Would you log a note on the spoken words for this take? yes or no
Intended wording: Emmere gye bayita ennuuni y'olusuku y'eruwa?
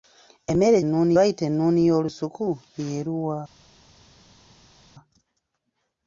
yes